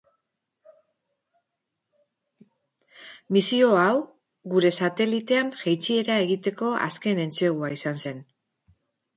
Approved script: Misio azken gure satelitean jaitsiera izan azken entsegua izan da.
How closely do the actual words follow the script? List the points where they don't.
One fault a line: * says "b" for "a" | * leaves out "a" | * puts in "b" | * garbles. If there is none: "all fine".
* says "hau" for "azken"
* says "egiteko" for "izan"
* says "zen" for "da"